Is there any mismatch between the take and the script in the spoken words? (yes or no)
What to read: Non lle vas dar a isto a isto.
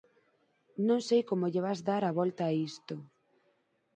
yes